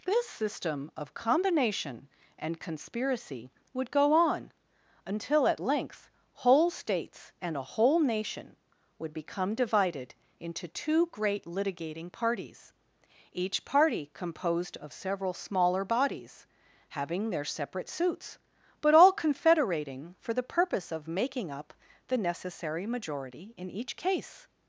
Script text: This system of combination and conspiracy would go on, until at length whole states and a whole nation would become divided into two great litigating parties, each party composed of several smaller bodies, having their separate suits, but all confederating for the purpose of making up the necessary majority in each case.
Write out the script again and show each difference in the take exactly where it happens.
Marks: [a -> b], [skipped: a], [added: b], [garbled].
This system of combination and conspiracy would go on, until at length whole states and a whole nation would become divided into two great litigating parties, each party composed of several smaller bodies, having their separate suits, but all confederating for the purpose of making up the necessary majority in each case.